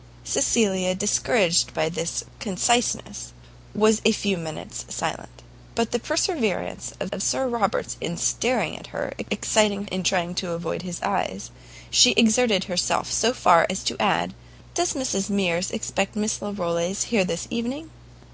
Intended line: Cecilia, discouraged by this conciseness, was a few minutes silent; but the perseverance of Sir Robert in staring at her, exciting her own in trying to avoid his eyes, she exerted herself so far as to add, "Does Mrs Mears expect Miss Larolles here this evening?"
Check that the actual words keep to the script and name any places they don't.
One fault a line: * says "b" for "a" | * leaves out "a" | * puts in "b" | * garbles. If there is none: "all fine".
* puts in "of"
* leaves out "her own"